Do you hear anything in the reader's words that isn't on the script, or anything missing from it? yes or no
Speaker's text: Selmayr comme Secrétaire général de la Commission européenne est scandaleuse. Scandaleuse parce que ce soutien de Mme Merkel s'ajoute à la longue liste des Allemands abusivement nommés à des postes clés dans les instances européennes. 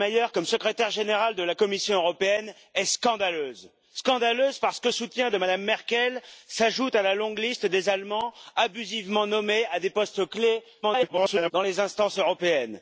yes